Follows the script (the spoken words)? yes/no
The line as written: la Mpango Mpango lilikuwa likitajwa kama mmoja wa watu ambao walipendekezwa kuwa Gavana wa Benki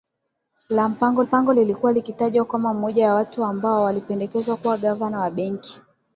yes